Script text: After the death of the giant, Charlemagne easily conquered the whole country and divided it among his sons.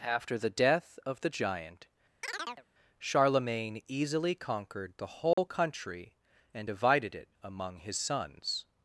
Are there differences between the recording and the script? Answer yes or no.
no